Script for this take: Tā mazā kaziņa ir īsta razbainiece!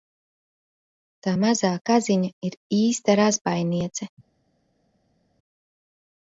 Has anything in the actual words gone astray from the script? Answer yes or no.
no